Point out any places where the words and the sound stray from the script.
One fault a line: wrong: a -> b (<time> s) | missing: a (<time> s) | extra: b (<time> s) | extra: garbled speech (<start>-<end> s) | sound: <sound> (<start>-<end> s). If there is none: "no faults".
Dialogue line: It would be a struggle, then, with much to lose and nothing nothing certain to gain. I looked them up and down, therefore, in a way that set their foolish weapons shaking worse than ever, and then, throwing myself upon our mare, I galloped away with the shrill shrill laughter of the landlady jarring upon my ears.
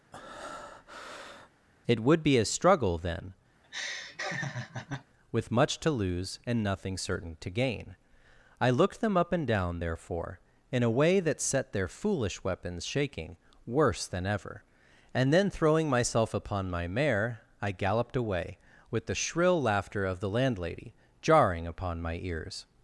sound: breath (0.1-1.5 s)
sound: laugh (3.6-5.1 s)
missing: nothing (7.0 s)
wrong: our -> my (16.7 s)
missing: shrill (19.6 s)